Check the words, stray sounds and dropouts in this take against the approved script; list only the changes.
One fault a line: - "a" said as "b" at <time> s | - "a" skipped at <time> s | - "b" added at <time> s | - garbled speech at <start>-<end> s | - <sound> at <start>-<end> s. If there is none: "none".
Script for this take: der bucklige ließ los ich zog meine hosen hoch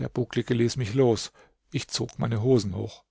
- "mich" added at 0.8 s